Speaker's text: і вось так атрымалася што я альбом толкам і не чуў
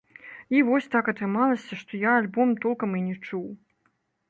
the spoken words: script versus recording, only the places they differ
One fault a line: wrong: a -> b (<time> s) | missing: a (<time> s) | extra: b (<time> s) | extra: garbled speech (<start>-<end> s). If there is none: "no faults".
no faults